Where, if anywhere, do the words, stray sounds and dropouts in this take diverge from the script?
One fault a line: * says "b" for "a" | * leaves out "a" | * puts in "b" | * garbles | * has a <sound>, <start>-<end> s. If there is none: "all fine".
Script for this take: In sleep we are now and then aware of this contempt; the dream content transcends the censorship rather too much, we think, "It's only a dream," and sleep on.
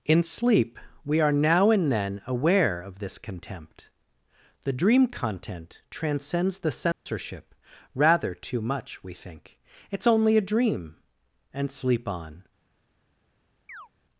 * has a dropout, 6.9-7.1 s
* has a chirp, 13.7-13.9 s